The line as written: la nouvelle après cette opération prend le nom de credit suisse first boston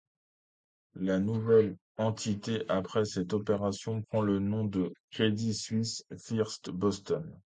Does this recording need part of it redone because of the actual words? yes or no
yes